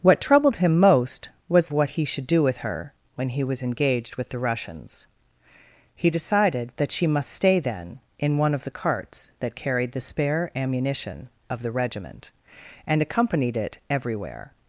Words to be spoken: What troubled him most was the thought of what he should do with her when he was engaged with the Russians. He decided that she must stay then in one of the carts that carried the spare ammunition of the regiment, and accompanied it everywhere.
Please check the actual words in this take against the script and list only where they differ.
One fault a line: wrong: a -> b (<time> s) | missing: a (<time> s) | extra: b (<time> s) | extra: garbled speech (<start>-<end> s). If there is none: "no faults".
missing: the thought of (1.7 s)